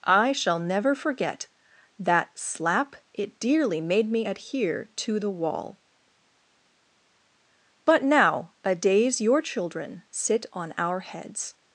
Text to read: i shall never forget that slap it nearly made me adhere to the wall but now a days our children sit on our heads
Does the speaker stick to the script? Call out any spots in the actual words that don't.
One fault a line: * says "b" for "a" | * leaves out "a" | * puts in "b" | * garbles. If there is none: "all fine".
* says "dearly" for "nearly"
* says "your" for "our"